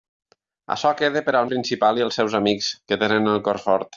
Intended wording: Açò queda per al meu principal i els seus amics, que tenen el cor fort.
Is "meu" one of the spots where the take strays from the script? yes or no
yes